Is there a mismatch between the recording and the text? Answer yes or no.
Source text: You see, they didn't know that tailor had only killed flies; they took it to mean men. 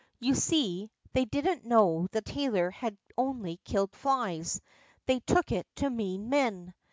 no